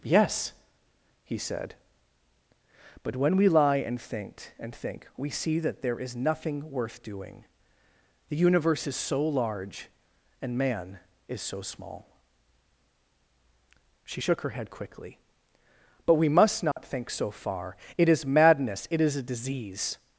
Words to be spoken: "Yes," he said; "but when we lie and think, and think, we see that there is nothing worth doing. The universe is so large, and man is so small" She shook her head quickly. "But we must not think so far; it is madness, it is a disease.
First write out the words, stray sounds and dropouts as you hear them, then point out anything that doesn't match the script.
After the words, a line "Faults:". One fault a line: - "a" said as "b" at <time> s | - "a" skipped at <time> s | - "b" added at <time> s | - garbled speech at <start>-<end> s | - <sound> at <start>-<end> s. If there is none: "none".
"Yes," he said; "but when we lie and think, and think, we see that there is nothing worth doing. The universe is so large, and man is so small" She shook her head quickly. "But we must not think so far; it is madness, it is a disease.
Faults:
- dropout at 16.7-16.8 s